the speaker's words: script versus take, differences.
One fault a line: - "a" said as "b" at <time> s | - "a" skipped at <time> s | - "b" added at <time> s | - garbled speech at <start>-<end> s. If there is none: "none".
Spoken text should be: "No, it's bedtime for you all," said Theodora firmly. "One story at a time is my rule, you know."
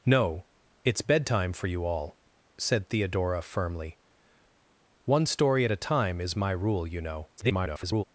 - garbled speech at 7.4-8.0 s